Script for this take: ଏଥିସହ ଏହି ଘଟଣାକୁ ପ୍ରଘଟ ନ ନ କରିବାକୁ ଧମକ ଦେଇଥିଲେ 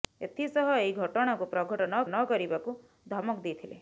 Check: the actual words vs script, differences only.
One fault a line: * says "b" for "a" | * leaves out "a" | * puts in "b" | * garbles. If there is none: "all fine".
all fine